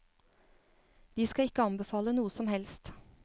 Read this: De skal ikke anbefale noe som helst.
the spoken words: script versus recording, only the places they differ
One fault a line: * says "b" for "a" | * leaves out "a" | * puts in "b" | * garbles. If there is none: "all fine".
all fine